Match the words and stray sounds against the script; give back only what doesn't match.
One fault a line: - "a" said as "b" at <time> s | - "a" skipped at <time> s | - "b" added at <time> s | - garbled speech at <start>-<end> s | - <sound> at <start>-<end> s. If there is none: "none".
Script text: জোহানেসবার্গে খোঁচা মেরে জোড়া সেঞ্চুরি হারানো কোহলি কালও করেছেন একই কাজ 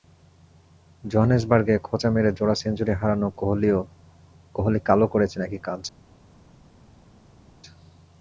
none